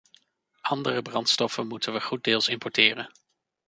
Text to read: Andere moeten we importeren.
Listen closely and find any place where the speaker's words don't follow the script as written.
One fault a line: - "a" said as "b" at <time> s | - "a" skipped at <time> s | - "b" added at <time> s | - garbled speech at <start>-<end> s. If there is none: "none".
- "brandstoffen" added at 1.0 s
- "goeddeels" added at 2.0 s